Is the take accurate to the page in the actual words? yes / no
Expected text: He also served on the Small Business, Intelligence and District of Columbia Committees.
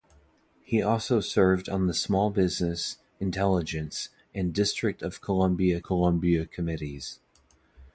no